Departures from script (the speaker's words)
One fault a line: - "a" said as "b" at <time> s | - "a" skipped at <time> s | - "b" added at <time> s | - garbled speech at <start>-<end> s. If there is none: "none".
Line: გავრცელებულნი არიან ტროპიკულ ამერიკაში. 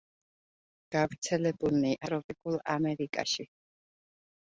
- "არიან" skipped at 1.9 s